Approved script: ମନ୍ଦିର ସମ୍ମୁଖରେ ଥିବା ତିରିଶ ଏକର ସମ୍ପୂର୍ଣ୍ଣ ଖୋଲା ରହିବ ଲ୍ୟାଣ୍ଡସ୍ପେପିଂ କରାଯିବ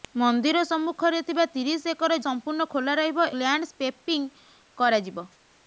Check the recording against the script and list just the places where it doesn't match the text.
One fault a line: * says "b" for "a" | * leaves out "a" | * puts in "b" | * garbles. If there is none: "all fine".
all fine